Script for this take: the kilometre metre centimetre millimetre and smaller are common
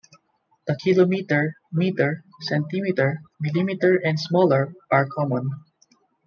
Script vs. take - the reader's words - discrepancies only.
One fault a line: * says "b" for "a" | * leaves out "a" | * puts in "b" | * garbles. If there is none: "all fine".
all fine